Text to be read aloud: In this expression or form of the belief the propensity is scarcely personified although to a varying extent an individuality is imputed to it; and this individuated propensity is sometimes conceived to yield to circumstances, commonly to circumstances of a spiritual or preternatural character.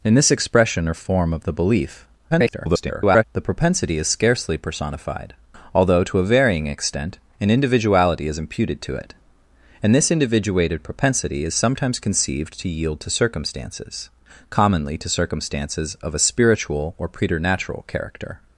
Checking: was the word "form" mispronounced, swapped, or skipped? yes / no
no